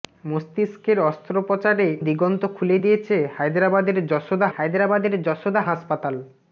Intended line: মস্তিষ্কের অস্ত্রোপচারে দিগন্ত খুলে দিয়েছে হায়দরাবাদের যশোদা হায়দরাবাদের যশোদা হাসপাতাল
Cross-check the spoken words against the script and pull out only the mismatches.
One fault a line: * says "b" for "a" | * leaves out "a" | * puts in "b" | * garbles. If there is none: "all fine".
all fine